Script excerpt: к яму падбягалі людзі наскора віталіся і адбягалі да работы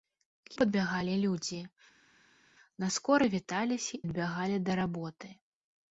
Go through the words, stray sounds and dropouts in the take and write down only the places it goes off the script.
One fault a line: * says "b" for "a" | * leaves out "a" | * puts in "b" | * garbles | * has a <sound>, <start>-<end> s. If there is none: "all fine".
* leaves out "яму"
* leaves out "і"